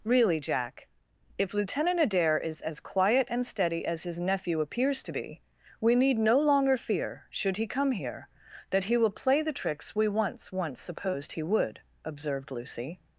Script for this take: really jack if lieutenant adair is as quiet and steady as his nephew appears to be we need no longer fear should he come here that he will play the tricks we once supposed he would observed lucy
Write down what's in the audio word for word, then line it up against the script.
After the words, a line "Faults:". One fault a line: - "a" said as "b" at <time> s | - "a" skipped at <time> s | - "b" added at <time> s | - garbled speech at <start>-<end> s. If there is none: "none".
really jack if lieutenant adair is as quiet and steady as his nephew appears to be we need no longer fear should he come here that he will play the tricks we once once supposed he would observed lucy
Faults:
- "once" added at 10.5 s